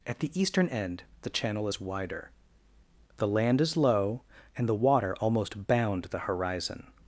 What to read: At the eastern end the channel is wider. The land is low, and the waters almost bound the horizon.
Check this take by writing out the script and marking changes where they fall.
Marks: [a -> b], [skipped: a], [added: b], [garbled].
At the eastern end the channel is wider. The land is low, and the [waters -> water] almost bound the horizon.